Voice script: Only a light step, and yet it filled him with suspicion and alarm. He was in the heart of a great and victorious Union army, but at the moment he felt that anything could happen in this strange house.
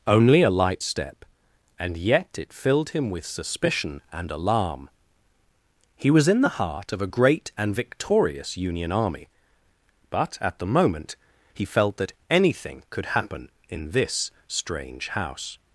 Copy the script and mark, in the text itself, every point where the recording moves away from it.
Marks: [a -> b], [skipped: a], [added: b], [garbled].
Only a light step, and yet it filled him with suspicion and alarm. He was in the heart of a great and victorious Union army, but at the moment he felt that anything could happen in this strange house.